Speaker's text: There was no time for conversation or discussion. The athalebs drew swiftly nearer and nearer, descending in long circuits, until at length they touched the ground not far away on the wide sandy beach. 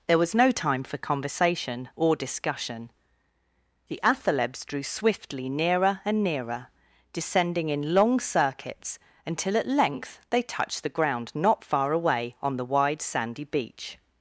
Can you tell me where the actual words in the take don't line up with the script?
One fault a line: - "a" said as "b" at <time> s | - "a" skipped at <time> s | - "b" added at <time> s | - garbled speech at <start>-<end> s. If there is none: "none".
none